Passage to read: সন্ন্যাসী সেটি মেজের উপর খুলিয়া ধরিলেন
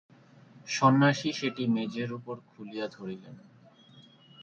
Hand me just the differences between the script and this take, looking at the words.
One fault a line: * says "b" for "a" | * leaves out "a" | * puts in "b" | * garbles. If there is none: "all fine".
all fine